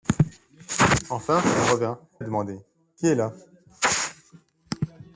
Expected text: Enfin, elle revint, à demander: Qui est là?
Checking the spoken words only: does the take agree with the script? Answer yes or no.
yes